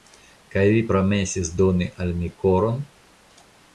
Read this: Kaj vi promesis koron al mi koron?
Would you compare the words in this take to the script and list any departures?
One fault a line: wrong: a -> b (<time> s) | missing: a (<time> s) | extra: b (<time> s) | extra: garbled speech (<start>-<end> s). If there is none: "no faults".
wrong: koron -> doni (1.6 s)